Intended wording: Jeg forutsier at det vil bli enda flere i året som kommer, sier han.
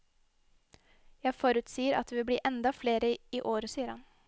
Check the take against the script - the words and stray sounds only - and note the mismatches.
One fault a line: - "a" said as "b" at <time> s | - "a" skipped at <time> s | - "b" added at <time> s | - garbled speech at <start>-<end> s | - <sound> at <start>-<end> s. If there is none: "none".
- "som kommer" skipped at 3.7 s